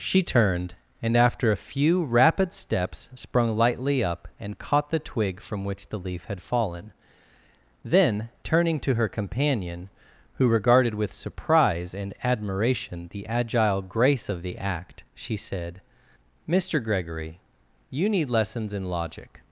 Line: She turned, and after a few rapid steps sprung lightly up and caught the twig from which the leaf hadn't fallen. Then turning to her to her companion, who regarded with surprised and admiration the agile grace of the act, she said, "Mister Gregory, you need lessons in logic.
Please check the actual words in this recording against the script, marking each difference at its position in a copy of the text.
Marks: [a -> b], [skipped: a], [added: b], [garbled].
She turned, and after a few rapid steps sprung lightly up and caught the twig from which the leaf [hadn't -> had] fallen. Then turning to her [skipped: to her] companion, who regarded with [surprised -> surprise] and admiration the agile grace of the act, she said, "Mister Gregory, you need lessons in logic.